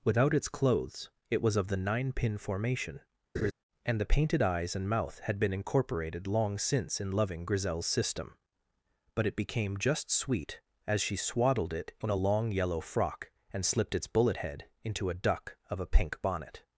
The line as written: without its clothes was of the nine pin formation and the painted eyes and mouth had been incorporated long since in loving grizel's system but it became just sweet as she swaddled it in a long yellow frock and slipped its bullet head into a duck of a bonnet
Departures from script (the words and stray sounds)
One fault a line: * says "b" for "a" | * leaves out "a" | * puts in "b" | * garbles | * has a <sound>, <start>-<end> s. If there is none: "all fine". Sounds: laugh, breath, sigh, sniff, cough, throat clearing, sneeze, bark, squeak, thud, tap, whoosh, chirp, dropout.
* puts in "it"
* has a laugh, 3.3-3.5 s
* puts in "pink"